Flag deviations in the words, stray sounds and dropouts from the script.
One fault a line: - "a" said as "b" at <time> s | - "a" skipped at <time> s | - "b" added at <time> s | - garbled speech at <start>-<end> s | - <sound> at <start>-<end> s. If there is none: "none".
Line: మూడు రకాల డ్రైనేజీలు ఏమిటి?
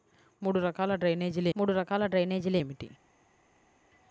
- "మూడు రకాల డ్రైనేజీలు" added at 1.5 s